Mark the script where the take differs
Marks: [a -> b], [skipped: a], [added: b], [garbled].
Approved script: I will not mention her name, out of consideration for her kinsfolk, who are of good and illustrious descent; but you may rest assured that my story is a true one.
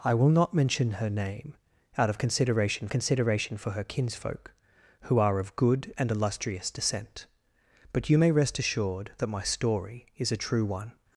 I will not mention her name, out of consideration [added: consideration] for her kinsfolk, who are of good and illustrious descent; but you may rest assured that my story is a true one.